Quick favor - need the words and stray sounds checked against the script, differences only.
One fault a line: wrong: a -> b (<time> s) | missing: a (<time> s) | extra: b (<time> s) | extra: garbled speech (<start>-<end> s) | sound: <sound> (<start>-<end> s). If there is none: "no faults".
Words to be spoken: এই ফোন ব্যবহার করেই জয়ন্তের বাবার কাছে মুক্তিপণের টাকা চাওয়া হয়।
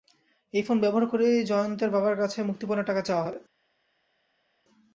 no faults